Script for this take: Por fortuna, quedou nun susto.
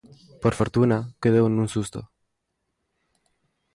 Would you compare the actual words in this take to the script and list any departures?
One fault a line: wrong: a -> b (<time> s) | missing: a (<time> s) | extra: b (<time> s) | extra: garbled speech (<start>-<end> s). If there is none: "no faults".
no faults